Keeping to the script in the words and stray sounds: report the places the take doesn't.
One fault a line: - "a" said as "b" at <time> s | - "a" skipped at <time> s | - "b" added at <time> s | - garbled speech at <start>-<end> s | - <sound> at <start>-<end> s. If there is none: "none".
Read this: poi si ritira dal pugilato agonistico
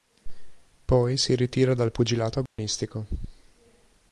- dropout at 2.5-2.6 s